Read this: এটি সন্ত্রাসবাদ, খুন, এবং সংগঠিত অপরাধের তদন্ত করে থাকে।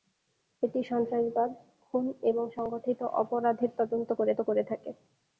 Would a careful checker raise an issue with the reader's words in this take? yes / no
yes